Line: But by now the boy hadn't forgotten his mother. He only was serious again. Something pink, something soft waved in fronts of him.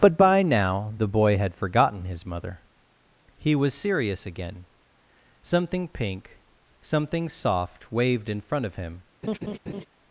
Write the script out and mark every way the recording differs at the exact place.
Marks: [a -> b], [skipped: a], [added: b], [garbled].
But by now the boy [hadn't -> had] forgotten his mother. He [skipped: only] was serious again. Something pink, something soft waved in [fronts -> front] of him.